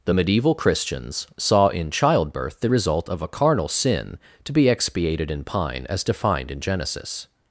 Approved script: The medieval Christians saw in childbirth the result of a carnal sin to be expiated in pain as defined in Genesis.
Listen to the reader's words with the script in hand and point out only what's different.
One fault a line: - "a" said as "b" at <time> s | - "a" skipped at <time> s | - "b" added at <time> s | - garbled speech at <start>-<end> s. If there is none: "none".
- "pain" said as "pine" at 5.4 s